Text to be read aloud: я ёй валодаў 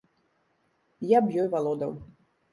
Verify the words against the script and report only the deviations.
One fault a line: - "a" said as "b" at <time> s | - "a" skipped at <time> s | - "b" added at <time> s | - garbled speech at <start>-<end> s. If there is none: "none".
- "б" added at 1.3 s